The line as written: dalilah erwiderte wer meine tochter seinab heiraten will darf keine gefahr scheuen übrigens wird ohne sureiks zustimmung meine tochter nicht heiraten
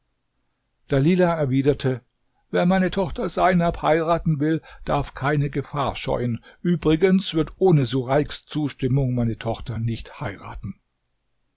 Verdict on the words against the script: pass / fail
pass